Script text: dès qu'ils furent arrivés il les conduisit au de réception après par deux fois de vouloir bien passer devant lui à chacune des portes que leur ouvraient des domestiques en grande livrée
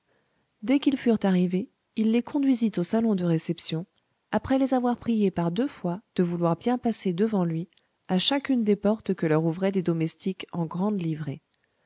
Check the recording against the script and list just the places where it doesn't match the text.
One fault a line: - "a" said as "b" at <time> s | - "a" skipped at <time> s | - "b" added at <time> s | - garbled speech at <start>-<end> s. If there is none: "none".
- "salon" added at 2.8 s
- "les avoir priés" added at 4.6 s